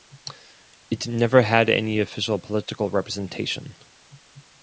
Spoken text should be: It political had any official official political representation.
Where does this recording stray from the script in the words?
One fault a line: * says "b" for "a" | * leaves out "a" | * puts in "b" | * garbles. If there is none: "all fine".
* says "never" for "political"
* leaves out "official"